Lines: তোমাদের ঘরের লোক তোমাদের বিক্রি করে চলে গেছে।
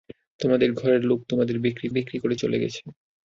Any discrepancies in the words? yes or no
yes